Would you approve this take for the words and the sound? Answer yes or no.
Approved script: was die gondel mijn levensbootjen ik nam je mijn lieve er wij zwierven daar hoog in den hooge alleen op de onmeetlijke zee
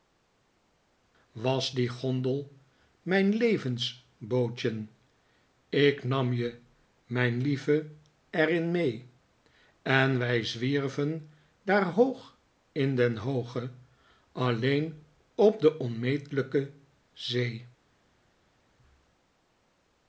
no